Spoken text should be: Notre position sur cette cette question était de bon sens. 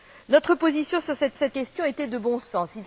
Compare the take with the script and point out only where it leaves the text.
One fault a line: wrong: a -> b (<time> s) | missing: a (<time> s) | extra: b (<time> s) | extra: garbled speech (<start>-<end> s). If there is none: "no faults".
no faults